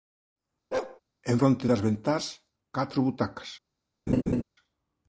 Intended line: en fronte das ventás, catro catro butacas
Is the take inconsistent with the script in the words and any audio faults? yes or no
yes